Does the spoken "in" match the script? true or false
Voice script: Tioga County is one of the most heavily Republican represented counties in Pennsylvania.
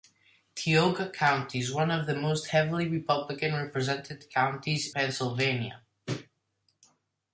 false